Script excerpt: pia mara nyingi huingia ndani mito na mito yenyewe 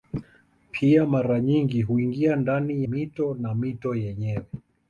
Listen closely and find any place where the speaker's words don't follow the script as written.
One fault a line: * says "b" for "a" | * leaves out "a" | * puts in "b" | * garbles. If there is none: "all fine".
all fine